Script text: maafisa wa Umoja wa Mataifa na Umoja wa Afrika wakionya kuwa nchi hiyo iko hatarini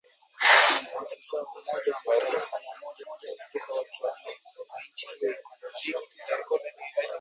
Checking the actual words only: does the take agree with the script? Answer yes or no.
no